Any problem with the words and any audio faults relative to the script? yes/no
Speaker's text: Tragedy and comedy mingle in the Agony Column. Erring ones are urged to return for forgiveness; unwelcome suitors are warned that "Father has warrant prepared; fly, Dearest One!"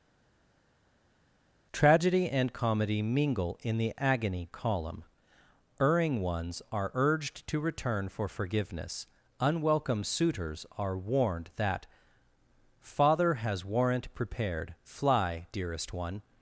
no